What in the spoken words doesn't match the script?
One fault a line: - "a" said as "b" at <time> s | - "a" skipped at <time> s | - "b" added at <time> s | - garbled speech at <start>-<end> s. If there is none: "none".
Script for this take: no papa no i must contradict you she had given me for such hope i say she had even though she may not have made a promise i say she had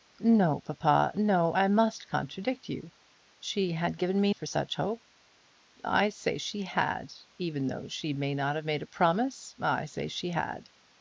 none